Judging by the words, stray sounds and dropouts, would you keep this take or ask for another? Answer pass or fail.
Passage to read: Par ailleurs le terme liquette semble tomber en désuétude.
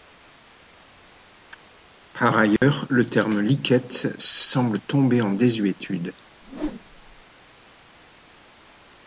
fail